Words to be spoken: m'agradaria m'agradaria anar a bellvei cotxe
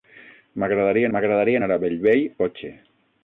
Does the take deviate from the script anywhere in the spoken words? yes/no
no